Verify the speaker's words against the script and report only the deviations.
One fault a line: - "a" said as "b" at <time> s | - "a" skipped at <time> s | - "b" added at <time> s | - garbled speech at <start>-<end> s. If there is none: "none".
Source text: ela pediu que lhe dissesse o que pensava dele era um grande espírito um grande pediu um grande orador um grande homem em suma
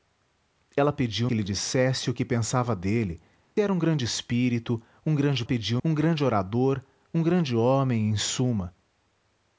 none